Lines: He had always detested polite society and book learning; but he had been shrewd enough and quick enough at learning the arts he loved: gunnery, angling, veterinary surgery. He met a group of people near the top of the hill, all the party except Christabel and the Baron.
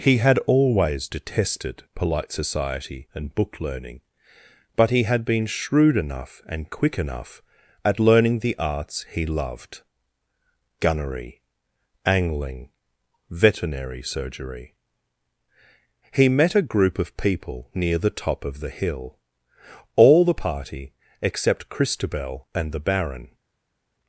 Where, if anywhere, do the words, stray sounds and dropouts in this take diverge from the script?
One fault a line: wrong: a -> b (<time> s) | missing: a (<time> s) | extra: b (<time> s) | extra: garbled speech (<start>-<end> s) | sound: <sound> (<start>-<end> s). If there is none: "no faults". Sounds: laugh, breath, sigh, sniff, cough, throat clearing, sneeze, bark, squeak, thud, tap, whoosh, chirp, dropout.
no faults